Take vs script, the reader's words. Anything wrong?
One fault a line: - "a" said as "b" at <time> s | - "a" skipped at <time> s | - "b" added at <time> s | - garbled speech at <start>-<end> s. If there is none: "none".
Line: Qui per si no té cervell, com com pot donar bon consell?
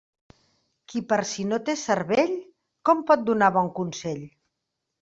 - "com" skipped at 3.1 s